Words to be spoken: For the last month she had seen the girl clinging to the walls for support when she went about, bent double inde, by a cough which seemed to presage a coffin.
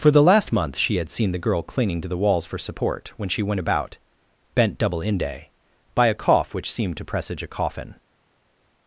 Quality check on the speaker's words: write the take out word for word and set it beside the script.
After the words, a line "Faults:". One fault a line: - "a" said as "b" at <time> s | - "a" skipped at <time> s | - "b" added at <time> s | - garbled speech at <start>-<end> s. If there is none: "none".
For the last month she had seen the girl clinging to the walls for support when she went about, bent double inde, by a cough which seemed to presage a coffin.
Faults:
none